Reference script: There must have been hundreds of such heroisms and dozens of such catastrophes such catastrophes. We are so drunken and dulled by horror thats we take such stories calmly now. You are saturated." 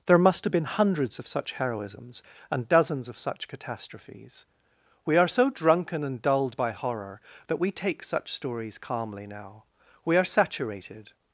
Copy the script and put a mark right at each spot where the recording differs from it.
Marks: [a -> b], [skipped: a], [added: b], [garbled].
There must have been hundreds of such heroisms and dozens of such catastrophes [skipped: such catastrophes.] We are so drunken and dulled by horror [thats -> that] we take such stories calmly now. [You -> We] are saturated."